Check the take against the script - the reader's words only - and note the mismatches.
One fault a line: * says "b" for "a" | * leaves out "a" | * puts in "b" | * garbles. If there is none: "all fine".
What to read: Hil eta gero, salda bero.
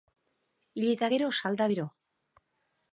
all fine